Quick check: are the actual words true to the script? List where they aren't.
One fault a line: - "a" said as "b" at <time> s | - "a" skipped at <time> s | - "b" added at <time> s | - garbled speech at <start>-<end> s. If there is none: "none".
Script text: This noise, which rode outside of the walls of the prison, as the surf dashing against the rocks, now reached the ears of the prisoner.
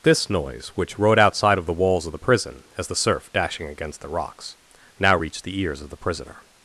none